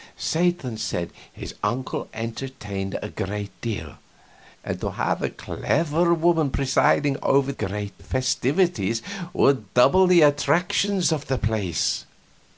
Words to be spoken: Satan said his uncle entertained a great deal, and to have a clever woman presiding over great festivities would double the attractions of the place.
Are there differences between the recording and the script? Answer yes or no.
no